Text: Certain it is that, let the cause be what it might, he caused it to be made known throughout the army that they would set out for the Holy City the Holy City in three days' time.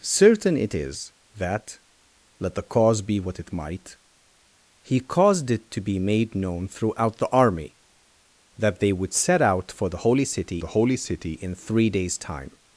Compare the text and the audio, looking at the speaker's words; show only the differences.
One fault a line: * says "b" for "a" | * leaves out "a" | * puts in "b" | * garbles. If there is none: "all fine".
all fine